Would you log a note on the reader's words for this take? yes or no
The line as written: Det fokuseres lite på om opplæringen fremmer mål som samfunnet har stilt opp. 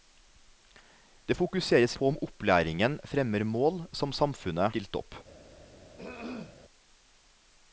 yes